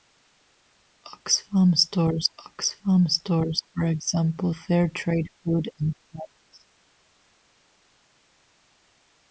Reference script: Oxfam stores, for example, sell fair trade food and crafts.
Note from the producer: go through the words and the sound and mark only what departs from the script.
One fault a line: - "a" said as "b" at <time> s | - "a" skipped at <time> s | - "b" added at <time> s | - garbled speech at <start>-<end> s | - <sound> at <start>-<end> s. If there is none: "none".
- "oxfam stores" added at 2.5 s
- "sell" skipped at 4.5 s